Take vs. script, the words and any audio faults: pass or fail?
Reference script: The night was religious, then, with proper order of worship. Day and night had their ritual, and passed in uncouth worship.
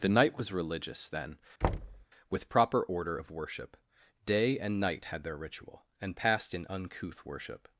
fail